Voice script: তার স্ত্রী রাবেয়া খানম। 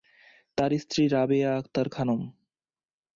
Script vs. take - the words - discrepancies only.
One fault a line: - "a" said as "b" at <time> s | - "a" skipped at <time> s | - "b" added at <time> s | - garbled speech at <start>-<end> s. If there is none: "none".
- "আক্তার" added at 1.6 s